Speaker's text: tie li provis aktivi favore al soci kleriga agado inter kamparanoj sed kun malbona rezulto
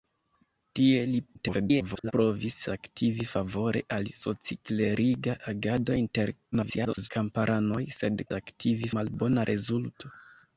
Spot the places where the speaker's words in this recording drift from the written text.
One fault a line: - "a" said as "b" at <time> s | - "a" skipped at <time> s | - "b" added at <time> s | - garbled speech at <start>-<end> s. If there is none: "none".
- garbled speech at 1.3-2.1 s
- garbled speech at 6.5-7.1 s
- "kun" said as "aktivi" at 8.4 s